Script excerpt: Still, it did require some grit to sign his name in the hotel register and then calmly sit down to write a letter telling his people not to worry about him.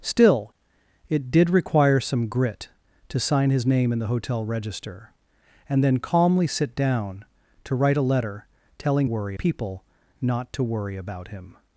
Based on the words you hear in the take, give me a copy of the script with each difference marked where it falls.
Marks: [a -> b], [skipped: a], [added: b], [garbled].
Still, it did require some grit to sign his name in the hotel register and then calmly sit down to write a letter telling [his -> worry] people not to worry about him.